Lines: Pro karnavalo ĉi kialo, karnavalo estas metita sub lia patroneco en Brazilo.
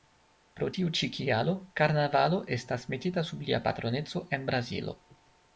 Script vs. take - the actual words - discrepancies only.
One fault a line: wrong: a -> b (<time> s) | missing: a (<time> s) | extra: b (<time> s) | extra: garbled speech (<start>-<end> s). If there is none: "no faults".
wrong: karnavalo -> tiu (0.8 s)